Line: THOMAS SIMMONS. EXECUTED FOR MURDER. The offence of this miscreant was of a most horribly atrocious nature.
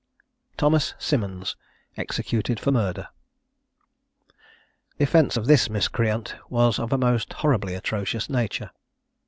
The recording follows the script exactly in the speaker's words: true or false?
true